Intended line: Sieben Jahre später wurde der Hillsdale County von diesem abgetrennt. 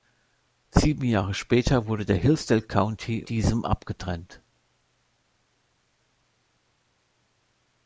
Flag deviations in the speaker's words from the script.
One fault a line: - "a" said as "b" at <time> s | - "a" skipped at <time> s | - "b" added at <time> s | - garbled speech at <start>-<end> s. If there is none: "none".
- "von" skipped at 3.2 s